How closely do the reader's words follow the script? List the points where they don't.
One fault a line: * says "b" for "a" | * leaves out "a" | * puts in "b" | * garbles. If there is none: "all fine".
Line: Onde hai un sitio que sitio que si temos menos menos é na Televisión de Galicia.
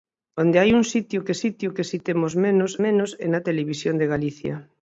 all fine